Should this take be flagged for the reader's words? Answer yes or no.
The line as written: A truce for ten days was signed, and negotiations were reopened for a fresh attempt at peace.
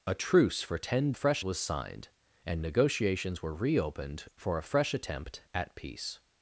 yes